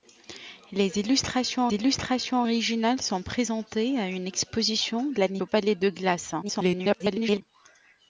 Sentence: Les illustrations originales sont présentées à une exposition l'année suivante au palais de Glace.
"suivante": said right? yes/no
no